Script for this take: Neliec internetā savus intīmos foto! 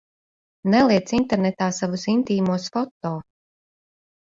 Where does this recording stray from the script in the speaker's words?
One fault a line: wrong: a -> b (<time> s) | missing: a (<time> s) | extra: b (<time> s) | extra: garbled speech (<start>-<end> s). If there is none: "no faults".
no faults